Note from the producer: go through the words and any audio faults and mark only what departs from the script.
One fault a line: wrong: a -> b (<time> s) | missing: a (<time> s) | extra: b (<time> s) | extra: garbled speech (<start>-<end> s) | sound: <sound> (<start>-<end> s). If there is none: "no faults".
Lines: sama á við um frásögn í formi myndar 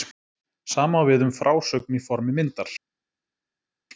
no faults